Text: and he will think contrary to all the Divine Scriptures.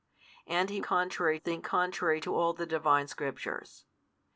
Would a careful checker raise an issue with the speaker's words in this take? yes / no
yes